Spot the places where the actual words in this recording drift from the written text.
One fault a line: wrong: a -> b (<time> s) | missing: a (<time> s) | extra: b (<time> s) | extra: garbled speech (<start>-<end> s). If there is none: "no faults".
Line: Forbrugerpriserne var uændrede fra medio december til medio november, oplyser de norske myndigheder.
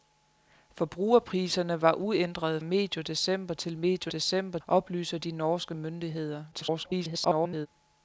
missing: fra (2.6 s)
wrong: november -> december (4.1 s)
extra: garbled speech (6.5-7.7 s)